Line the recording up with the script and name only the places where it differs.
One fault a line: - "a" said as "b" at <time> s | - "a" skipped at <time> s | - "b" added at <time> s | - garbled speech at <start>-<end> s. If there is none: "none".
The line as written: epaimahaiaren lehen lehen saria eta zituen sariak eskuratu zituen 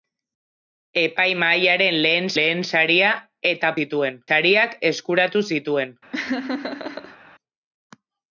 none